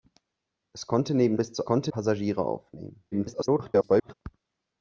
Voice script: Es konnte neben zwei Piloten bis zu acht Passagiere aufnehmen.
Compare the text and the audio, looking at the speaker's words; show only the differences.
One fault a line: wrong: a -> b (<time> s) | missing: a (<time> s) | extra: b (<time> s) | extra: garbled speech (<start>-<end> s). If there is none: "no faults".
missing: zwei Piloten (1.4 s)
wrong: acht -> konnte (1.6 s)
extra: garbled speech (3.1-4.1 s)